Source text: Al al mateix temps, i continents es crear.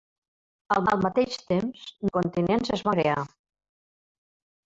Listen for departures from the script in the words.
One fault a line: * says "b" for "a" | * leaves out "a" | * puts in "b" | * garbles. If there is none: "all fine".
all fine